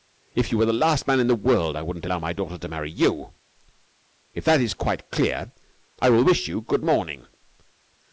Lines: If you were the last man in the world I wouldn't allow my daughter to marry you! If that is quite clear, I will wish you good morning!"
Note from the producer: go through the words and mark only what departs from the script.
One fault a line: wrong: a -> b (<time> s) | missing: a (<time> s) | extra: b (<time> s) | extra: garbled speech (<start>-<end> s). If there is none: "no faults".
no faults